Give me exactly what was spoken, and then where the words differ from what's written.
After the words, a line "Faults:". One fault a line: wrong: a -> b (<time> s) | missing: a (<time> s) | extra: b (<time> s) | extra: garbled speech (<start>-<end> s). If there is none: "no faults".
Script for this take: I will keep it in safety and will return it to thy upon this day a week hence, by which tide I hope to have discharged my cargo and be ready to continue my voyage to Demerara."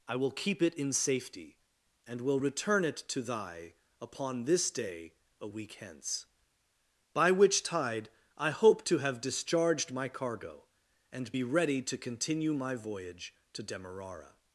I will keep it in safety and will return it to thy upon this day a week hence, by which tide I hope to have discharged my cargo and be ready to continue my voyage to Demerara."
Faults:
no faults